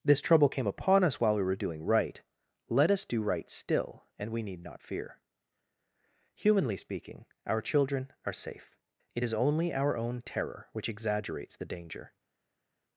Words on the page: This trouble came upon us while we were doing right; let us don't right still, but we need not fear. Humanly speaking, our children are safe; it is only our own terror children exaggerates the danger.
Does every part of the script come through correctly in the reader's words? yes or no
no